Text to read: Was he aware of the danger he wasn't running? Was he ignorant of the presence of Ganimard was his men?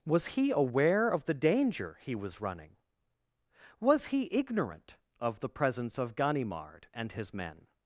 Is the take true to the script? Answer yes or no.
no